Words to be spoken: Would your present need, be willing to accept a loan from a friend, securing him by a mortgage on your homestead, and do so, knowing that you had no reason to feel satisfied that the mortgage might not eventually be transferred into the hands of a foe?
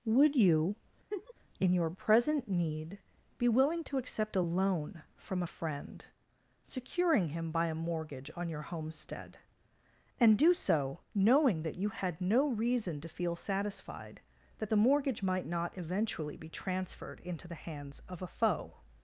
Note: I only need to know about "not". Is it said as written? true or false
true